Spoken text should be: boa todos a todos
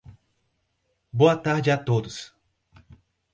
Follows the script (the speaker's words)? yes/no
no